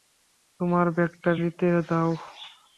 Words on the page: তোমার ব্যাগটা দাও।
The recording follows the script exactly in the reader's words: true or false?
false